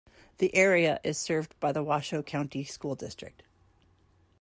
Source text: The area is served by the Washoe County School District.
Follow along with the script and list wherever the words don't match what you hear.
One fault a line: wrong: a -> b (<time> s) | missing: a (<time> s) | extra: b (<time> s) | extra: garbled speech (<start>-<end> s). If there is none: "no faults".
no faults